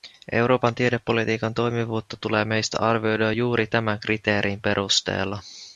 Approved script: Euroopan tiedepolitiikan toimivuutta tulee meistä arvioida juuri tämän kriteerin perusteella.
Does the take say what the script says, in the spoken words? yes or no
yes